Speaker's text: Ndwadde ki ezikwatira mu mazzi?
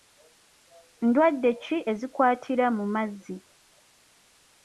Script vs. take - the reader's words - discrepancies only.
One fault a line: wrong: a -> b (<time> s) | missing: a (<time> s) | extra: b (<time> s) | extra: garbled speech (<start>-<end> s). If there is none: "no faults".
no faults